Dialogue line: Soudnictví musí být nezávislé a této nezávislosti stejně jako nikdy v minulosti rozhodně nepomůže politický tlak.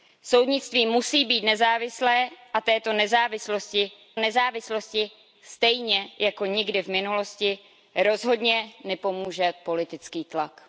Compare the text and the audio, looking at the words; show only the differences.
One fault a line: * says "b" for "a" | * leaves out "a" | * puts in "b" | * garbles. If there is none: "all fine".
* puts in "nezávislosti"